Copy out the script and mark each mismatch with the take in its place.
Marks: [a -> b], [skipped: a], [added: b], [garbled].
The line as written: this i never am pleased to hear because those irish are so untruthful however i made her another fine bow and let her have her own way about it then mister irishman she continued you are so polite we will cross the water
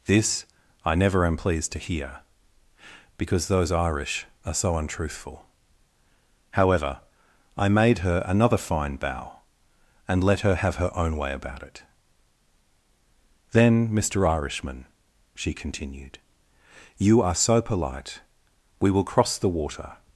this i never am pleased to hear because those irish are so untruthful however i made her another fine bow and let her have her own way about it then mister irishman she continued you are so polite we will cross the water